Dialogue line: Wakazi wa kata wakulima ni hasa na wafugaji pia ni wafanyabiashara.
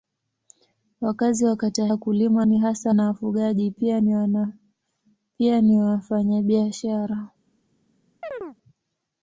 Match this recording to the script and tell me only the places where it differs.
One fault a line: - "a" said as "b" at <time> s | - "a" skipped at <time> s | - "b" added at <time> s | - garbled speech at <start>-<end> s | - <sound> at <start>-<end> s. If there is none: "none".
- chirp at 8.2-8.6 s